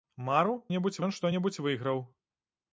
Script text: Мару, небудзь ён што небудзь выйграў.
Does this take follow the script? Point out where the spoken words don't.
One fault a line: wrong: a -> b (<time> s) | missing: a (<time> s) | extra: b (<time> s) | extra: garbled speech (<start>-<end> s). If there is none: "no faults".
no faults